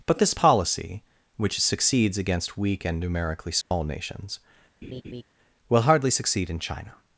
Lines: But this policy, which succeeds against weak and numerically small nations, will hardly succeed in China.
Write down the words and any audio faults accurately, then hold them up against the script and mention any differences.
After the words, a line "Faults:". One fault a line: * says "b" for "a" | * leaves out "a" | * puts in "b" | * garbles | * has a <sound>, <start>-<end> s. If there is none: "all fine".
But this policy, which succeeds against weak and numerically small nations, will hardly succeed in China.
Faults:
* has a dropout, 3.6-3.7 s
* has a laugh, 4.8-5.2 s